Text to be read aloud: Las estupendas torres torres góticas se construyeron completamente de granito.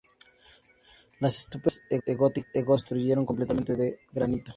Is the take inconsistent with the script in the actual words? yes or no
no